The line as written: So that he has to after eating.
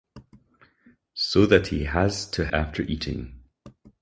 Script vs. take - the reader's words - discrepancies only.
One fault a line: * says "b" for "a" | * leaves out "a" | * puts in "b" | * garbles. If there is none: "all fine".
all fine